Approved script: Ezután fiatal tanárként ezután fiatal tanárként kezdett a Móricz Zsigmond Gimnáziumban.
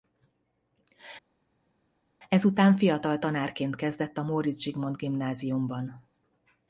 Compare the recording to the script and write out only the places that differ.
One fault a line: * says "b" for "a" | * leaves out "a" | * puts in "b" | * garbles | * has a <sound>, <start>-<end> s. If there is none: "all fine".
* leaves out "ezután fiatal tanárként"